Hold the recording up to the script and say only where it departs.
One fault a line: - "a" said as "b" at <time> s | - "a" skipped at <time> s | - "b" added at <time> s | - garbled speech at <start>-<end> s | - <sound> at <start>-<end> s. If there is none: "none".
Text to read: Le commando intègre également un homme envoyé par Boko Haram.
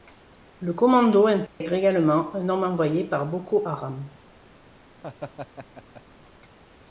- dropout at 1.5-1.6 s
- laugh at 5.0-6.0 s